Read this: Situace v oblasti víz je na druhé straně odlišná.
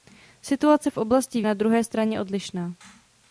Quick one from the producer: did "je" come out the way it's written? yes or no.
no